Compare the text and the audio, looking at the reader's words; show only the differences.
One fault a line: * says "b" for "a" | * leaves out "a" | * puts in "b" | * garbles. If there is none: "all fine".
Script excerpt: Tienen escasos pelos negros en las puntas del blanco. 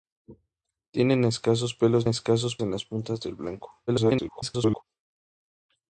* says "escasos" for "negros"
* garbles